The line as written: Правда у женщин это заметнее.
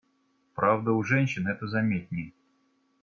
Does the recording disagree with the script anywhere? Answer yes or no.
no